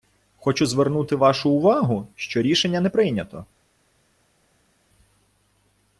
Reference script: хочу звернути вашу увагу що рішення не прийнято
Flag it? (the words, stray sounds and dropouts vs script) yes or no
no